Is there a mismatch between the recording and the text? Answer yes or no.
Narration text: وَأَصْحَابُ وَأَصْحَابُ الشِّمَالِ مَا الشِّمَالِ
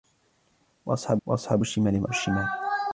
no